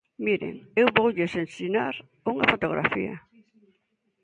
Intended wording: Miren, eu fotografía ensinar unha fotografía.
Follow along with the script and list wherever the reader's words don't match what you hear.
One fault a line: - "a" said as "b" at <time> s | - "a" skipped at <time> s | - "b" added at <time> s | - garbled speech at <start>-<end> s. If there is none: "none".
- "fotografía" said as "voulles" at 1.0 s